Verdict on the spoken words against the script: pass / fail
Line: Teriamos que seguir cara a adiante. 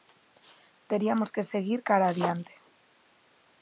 pass